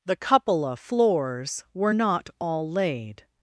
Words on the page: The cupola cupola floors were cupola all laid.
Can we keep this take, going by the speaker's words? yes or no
no